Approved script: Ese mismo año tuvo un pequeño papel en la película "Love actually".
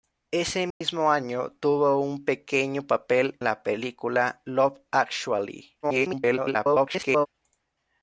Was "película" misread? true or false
false